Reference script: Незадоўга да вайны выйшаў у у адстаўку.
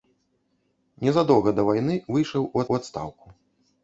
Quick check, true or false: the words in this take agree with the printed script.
true